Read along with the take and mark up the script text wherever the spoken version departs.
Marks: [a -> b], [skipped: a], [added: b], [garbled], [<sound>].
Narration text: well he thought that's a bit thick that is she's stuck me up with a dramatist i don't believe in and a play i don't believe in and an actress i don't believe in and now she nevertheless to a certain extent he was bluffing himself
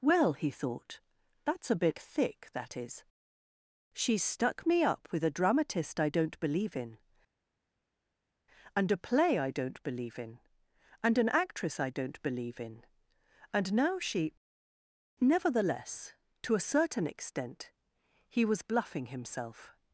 well he thought that's a bit thick that is she's stuck me up with a dramatist i don't believe in and a play i don't believe in and an actress i don't believe in and now she nevertheless to a certain extent he was bluffing himself